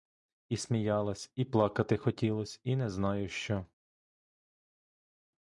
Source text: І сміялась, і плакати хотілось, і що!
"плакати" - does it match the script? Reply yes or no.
yes